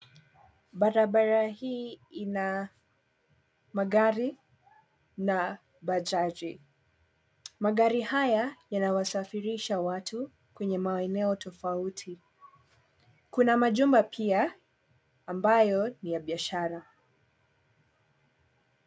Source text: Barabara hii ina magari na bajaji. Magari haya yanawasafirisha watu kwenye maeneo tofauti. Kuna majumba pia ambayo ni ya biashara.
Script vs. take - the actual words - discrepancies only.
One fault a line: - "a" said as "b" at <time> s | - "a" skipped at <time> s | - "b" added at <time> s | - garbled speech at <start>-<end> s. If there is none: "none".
none